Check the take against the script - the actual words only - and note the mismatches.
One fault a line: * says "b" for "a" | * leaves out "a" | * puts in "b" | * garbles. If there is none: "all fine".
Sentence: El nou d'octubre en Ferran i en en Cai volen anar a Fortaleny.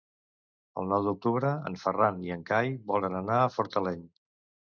* leaves out "en"